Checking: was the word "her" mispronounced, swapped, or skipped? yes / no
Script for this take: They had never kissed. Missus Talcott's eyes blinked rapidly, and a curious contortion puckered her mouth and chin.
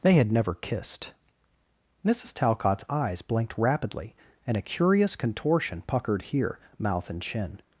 yes